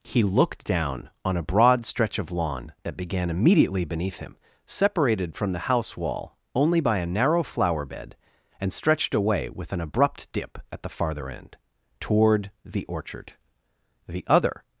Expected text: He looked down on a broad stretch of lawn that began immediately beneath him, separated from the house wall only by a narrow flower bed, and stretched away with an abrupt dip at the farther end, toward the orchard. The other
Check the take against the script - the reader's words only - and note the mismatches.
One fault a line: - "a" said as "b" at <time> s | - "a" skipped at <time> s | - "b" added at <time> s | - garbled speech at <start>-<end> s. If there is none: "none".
none